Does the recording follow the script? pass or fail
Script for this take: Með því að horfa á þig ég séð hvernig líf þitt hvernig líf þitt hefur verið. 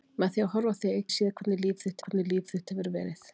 pass